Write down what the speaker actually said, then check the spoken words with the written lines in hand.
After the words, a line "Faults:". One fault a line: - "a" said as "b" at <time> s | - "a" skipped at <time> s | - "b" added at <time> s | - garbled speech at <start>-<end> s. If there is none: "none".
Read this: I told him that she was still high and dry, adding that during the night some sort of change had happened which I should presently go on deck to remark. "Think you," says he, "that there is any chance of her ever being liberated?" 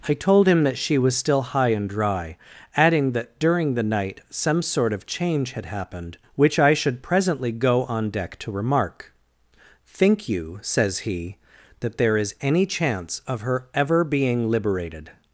I told him that she was still high and dry, adding that during the night some sort of change had happened which I should presently go on deck to remark. "Think you," says he, "that there is any chance of her ever being liberated?"
Faults:
none